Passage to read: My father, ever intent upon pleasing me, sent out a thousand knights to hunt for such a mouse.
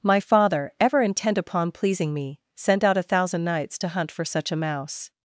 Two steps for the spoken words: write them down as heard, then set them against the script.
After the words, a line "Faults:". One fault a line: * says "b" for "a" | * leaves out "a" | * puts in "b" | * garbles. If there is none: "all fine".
My father, ever intent upon pleasing me, sent out a thousand knights to hunt for such a mouse.
Faults:
all fine